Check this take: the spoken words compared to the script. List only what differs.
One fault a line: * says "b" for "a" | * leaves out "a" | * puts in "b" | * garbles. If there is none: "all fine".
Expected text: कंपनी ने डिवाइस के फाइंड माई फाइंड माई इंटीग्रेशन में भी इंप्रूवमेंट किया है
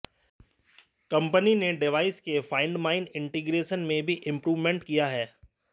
* leaves out "फाइंड माई"